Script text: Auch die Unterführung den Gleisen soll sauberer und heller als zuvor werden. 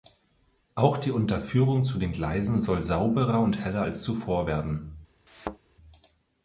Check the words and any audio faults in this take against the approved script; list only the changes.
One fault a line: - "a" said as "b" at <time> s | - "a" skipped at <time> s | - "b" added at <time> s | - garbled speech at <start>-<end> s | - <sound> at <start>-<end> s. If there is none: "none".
- "zu" added at 1.8 s
- thud at 5.3-5.6 s